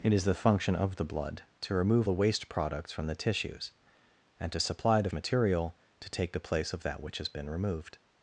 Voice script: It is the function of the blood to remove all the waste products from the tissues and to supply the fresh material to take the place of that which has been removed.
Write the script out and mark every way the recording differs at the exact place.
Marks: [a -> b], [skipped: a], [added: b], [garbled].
It is the function of the blood to remove [skipped: all] the waste products from the tissues and to supply the [skipped: fresh] material to take the place of that which has been removed.